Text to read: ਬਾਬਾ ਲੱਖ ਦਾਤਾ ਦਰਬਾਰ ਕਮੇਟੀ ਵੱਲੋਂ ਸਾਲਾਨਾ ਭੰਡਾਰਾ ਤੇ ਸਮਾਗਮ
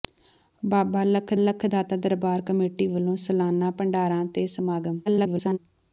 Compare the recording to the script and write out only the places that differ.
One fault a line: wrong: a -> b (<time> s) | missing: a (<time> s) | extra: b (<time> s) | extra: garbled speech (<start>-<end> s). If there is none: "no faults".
extra: ਲੱਖ (1.4 s)
extra: garbled speech (5.1-5.6 s)